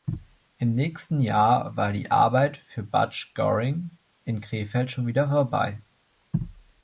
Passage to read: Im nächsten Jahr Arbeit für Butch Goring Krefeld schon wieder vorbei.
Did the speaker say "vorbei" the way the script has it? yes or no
yes